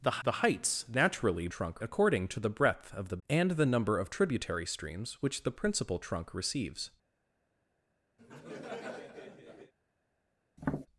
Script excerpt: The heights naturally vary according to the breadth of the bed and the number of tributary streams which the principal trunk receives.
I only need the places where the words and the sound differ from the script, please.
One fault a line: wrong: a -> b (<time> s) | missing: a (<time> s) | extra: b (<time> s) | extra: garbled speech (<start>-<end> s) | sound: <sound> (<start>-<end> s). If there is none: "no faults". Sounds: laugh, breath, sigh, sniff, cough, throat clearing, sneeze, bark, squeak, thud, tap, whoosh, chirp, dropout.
extra: the (0.2 s)
wrong: vary -> trunk (1.5 s)
missing: bed (3.2 s)
sound: laugh (8.2-9.7 s)
sound: tap (10.6-10.9 s)